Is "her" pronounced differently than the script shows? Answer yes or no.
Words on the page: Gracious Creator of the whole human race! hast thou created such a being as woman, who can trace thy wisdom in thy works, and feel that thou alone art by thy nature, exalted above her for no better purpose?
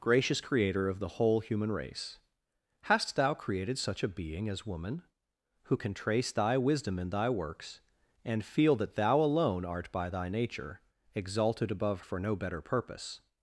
yes